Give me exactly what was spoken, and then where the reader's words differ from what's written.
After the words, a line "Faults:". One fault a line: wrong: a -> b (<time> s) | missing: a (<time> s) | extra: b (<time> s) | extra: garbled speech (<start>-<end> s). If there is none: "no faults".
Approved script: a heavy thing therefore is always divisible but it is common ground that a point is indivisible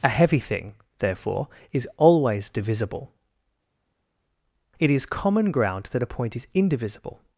a heavy thing therefore is always divisible it is common ground that a point is indivisible
Faults:
missing: but (3.1 s)